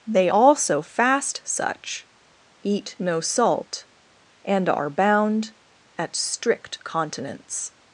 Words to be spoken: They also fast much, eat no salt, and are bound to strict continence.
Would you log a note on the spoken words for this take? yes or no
yes